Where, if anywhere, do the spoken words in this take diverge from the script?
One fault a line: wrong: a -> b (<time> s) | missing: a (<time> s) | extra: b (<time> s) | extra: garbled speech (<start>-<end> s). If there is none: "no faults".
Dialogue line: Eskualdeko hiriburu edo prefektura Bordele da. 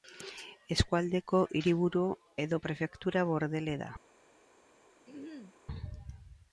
no faults